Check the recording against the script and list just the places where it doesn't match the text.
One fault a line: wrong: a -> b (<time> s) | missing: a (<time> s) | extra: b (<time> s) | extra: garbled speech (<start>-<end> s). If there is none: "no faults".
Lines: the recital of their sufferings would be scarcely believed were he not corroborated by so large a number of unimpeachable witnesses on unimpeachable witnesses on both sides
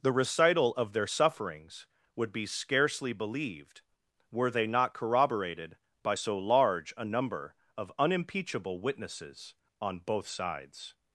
wrong: he -> they (4.5 s)
missing: unimpeachable witnesses on (10.0 s)